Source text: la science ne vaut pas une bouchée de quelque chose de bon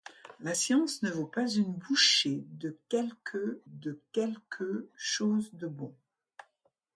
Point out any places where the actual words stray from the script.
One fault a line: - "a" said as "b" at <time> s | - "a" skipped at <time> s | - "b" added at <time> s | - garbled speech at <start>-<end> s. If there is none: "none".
- "de quelque" added at 3.7 s